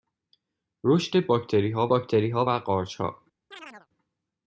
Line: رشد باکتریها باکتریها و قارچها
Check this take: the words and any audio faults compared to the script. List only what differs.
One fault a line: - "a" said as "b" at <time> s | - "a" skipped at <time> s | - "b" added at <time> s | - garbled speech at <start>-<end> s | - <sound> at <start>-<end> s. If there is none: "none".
- chirp at 3.5-3.9 s